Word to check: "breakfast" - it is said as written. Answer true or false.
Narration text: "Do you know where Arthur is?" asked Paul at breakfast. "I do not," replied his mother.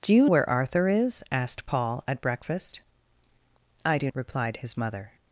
true